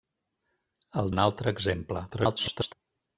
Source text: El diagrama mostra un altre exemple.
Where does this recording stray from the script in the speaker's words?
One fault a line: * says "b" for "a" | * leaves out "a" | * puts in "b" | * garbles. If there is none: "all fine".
* leaves out "diagrama mostra"
* garbles